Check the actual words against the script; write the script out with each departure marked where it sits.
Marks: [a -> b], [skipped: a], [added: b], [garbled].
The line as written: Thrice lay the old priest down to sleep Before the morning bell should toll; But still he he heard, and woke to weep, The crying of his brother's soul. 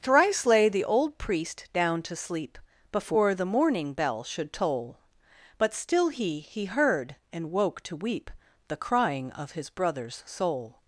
Thrice lay the old priest down to sleep Before the morning bell should toll; But still he he heard, and woke to weep, The crying of his brother's soul.